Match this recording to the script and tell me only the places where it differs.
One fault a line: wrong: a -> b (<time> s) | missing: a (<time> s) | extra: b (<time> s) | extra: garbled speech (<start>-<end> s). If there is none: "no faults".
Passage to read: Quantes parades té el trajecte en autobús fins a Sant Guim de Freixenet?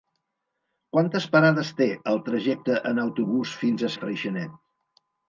missing: Sant Guim (4.0 s)